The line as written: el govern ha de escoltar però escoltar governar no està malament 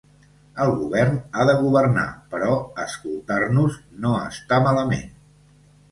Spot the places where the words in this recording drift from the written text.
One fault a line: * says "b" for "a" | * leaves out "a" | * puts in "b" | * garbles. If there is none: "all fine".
* says "governar" for "escoltar"
* says "nos" for "governar"